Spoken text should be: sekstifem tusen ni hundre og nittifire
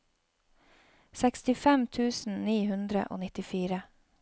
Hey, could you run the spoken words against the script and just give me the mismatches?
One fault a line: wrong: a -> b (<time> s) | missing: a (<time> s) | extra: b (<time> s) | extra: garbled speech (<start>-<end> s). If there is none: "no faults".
no faults